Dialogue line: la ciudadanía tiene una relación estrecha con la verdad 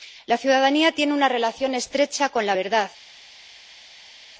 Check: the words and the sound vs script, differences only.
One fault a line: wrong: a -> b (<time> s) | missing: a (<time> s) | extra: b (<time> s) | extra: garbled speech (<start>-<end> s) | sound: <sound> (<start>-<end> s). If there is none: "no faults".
no faults